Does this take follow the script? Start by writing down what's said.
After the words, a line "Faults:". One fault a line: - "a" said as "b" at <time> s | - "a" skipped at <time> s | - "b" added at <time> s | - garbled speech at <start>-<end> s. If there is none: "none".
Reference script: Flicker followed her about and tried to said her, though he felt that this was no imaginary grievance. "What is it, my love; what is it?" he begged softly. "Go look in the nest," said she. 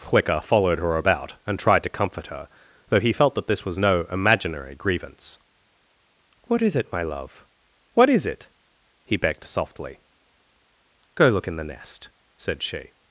Flicker followed her about and tried to comfort her, though he felt that this was no imaginary grievance. "What is it, my love; what is it?" he begged softly. "Go look in the nest," said she.
Faults:
- "said" said as "comfort" at 1.9 s